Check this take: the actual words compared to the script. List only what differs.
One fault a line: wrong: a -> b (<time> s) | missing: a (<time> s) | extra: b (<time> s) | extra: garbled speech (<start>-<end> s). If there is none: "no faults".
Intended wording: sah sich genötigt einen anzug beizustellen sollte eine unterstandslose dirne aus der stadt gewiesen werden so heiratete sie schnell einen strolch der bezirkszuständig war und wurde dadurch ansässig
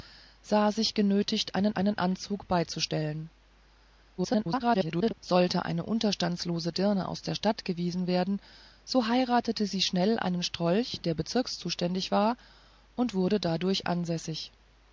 extra: einen (1.7 s)
extra: garbled speech (4.2-5.1 s)